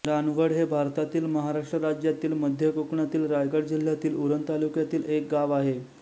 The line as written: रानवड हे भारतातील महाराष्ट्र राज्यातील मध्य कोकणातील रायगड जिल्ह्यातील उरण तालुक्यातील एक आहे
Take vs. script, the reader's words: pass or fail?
fail